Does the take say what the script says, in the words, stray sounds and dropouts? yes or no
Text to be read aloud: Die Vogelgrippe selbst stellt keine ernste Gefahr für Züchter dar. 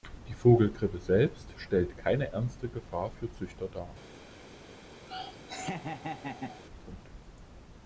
no